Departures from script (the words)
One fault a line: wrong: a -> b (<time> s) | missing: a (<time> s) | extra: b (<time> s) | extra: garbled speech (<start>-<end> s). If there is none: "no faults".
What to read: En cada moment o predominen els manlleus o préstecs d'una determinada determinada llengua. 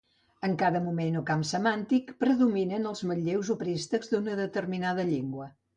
extra: camp semàntic (1.3 s)
missing: determinada (5.1 s)